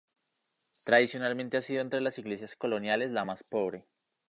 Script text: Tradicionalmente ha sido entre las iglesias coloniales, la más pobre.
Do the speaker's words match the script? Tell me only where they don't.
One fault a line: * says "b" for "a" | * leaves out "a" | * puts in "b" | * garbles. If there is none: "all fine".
all fine